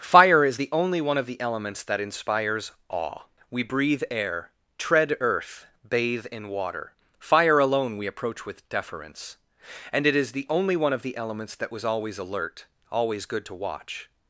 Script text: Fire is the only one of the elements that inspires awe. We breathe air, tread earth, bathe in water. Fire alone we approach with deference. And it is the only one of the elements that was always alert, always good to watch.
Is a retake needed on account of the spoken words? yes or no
no